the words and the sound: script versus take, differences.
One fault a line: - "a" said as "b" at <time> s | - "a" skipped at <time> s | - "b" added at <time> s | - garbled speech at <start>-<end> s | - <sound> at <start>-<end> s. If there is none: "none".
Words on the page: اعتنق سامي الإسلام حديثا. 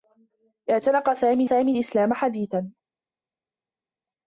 - "سامي" added at 1.4 s